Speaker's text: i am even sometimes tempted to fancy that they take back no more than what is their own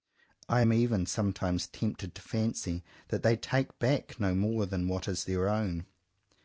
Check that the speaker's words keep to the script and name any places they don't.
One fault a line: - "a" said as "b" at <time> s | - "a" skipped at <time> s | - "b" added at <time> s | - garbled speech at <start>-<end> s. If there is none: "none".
none